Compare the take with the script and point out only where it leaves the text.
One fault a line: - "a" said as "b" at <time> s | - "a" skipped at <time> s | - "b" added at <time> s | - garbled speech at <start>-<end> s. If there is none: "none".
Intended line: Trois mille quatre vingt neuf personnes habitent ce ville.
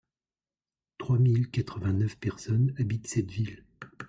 - "ce" said as "cette" at 3.1 s